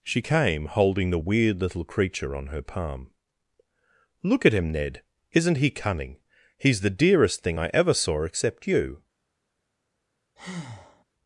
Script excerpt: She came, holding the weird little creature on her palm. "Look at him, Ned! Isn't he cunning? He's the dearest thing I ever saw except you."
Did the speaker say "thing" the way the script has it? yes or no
yes